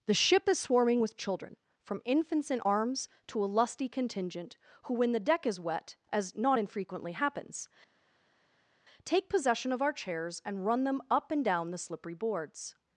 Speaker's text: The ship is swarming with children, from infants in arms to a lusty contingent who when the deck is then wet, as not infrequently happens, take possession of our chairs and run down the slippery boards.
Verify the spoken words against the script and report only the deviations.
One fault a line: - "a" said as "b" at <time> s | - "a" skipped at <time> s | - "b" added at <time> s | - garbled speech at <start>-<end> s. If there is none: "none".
- "then" skipped at 5.6 s
- "them up and" added at 10.9 s